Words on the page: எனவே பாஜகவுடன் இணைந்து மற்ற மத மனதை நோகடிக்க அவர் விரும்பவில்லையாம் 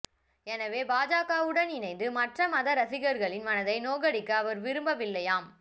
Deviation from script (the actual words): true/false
true